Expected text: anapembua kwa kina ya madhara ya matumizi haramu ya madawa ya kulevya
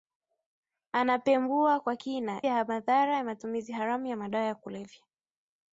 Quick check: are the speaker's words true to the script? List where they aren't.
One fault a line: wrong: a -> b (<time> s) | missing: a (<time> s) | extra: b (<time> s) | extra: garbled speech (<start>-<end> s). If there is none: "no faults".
no faults